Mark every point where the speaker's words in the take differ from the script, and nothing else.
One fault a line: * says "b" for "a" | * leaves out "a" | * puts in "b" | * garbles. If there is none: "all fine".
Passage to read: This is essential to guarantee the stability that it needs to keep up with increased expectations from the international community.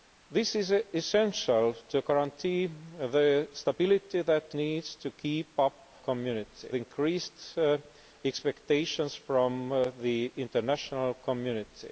* leaves out "it"
* says "community" for "with"